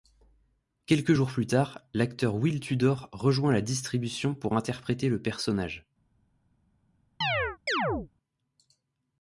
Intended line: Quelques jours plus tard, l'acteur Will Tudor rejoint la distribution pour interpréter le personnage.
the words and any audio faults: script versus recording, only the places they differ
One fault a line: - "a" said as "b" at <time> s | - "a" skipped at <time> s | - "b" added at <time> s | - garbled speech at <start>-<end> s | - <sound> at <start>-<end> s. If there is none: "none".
- chirp at 7.2-8.1 s